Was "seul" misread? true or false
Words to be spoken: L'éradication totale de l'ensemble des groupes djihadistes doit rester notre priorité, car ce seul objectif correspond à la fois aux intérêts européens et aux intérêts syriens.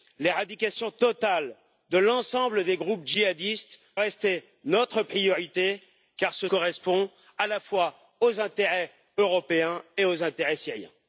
true